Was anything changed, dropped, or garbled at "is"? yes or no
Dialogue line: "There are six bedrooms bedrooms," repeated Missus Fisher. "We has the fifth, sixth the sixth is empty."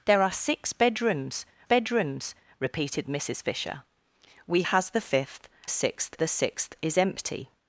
no